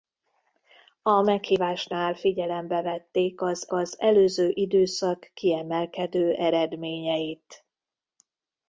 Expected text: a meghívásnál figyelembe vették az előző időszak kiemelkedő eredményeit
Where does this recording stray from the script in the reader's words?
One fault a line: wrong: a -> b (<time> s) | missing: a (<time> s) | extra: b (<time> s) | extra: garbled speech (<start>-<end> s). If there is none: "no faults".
extra: az (3.7 s)